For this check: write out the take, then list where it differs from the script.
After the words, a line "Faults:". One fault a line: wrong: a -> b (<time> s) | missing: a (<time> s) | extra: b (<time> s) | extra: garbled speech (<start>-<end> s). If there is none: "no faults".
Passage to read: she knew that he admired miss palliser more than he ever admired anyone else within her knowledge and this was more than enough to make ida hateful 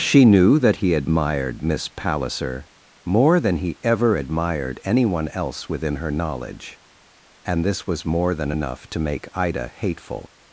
she knew that he admired miss palliser more than he ever admired anyone else within her knowledge and this was more than enough to make ida hateful
Faults:
no faults